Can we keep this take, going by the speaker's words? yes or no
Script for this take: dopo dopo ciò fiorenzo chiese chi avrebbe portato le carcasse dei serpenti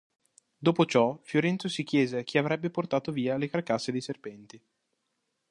no